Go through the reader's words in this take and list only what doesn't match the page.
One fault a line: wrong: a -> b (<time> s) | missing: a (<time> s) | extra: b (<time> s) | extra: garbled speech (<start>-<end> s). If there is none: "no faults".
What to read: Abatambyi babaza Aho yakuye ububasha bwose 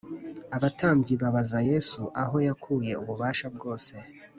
extra: Yesu (1.7 s)